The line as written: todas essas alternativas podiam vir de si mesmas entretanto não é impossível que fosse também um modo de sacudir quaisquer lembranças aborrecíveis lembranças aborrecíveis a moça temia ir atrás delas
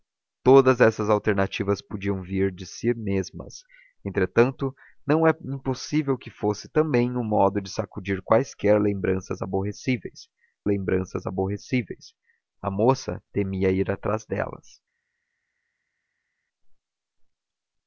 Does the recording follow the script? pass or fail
pass